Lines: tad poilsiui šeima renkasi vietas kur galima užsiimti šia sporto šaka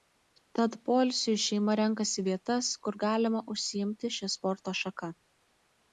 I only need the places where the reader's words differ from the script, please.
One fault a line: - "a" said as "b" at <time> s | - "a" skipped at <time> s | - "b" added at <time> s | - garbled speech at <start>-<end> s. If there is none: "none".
none